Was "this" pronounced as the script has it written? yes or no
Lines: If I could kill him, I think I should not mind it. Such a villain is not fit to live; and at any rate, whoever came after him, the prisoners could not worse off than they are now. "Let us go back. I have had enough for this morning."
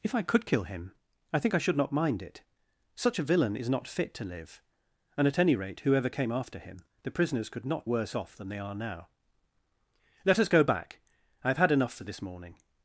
yes